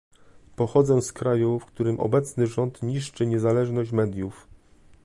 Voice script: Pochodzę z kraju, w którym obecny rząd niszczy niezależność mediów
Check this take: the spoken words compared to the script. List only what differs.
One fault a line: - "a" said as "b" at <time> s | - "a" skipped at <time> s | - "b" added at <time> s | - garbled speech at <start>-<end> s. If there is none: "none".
none